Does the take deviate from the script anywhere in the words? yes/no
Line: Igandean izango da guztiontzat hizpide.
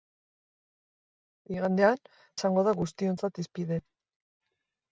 no